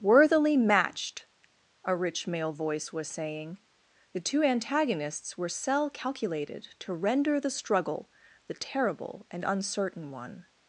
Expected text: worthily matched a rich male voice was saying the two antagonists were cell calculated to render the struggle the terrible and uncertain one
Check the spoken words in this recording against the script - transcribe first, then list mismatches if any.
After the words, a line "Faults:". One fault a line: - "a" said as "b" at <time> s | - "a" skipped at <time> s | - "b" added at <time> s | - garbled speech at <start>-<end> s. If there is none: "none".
worthily matched a rich male voice was saying the two antagonists were cell calculated to render the struggle the terrible and uncertain one
Faults:
none